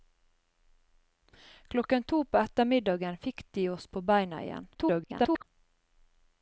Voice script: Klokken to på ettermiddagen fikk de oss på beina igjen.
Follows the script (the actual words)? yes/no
no